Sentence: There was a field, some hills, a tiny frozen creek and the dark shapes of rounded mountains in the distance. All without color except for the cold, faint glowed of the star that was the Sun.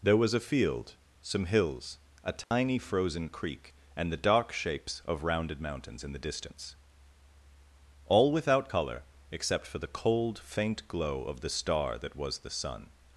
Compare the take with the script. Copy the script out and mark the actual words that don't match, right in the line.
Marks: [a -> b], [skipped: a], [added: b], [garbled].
There was a field, some hills, a tiny frozen creek and the dark shapes of rounded mountains in the distance. All without color except for the cold, faint [glowed -> glow] of the star that was the Sun.